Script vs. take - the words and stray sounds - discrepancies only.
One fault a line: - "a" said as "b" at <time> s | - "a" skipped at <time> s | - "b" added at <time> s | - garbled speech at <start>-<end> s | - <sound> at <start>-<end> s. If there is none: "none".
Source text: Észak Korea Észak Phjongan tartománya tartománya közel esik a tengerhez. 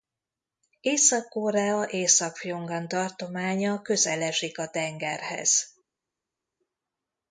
- "tartománya" skipped at 3.8 s